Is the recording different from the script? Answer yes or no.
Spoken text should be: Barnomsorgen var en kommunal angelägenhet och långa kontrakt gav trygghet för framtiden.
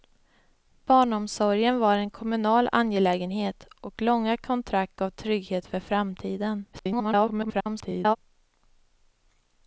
yes